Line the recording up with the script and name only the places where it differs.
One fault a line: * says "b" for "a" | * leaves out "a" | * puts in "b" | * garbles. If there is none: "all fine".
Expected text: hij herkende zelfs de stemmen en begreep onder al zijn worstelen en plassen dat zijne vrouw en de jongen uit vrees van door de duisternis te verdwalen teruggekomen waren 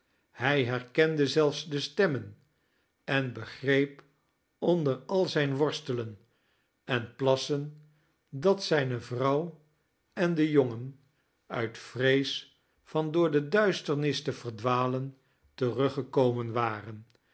all fine